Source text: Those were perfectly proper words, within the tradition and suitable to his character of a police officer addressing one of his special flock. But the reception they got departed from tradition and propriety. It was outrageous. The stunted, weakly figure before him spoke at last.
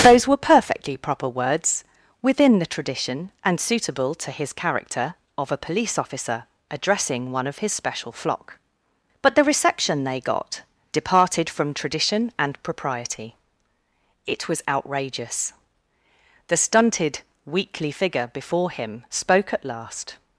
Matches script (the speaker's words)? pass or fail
pass